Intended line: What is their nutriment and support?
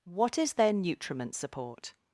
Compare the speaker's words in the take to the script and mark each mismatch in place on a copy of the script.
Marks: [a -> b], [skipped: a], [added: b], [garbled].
What is their nutriment [skipped: and] support?